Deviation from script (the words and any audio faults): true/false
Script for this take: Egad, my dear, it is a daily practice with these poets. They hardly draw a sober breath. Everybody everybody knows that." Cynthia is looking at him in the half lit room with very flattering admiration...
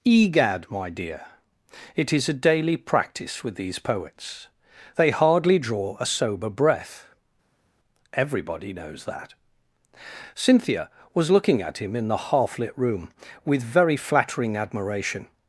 true